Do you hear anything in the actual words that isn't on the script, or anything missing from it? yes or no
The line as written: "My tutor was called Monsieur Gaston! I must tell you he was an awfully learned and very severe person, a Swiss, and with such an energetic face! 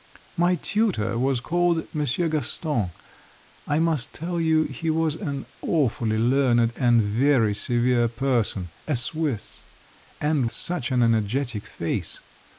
yes